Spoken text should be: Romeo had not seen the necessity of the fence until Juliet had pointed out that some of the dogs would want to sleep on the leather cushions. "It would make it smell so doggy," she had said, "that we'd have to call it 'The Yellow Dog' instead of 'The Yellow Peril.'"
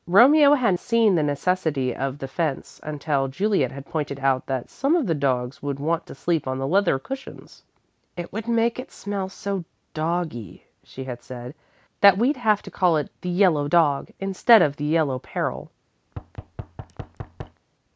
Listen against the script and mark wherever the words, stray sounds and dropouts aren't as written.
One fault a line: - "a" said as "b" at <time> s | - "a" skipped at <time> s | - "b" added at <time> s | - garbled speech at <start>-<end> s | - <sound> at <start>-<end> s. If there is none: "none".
- "not" skipped at 0.7 s
- thud at 16.1-17.6 s